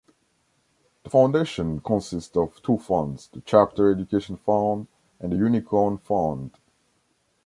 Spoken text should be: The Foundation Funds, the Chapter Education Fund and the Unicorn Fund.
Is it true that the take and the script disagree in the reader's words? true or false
true